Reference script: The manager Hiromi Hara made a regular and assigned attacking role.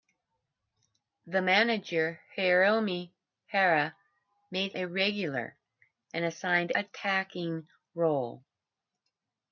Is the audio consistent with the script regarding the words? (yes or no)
yes